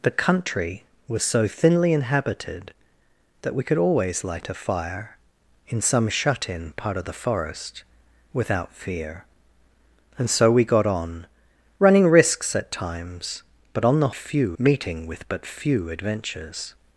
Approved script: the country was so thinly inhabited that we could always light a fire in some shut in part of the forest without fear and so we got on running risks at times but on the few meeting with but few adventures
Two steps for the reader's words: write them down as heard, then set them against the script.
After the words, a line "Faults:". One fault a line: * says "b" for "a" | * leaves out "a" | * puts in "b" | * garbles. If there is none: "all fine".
the country was so thinly inhabited that we could always light a fire in some shut in part of the forest without fear and so we got on running risks at times but on the few meeting with but few adventures
Faults:
all fine